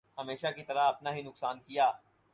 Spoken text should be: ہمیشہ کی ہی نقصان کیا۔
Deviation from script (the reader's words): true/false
true